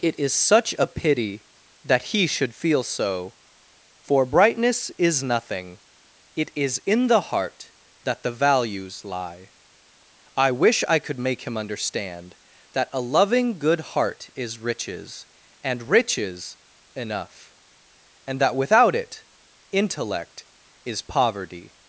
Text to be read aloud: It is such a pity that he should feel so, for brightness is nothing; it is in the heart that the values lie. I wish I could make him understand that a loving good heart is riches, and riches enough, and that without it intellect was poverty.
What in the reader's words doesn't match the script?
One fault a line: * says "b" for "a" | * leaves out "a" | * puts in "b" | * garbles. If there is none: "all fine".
* says "is" for "was"